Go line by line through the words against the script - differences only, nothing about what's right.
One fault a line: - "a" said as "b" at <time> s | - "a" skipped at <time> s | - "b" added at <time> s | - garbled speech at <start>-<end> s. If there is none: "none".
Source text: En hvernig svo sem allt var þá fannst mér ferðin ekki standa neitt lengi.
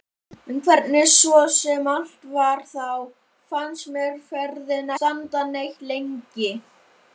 - "ekki" skipped at 4.9 s